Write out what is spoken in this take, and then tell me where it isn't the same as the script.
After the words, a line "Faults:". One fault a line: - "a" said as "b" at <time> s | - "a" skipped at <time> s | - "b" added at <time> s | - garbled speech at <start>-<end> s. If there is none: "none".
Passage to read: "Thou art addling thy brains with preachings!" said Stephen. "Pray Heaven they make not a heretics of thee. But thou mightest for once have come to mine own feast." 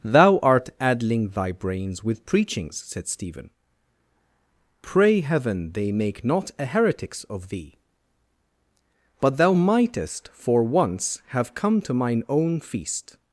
"Thou art addling thy brains with preachings!" said Stephen. "Pray Heaven they make not a heretics of thee. But thou mightest for once have come to mine own feast."
Faults:
none